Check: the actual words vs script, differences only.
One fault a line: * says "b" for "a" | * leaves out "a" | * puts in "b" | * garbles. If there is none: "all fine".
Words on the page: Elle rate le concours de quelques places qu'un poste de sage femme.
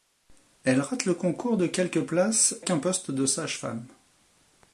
all fine